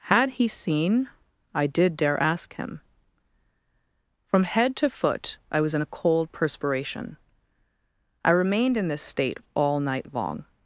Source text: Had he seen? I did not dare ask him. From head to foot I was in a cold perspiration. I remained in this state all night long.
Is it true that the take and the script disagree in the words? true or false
true